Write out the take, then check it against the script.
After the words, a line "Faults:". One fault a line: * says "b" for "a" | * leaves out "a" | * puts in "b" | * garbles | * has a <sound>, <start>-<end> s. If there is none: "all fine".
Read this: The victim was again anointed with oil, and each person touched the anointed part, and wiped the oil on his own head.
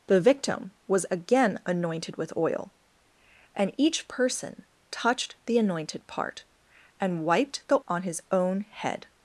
The victim was again anointed with oil, and each person touched the anointed part, and wiped the on his own head.
Faults:
* leaves out "oil"